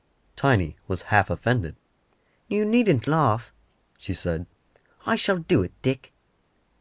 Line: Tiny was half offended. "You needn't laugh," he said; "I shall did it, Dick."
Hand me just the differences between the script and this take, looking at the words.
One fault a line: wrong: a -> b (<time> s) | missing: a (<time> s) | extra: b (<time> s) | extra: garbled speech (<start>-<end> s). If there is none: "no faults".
wrong: he -> she (4.0 s)
wrong: did -> do (5.4 s)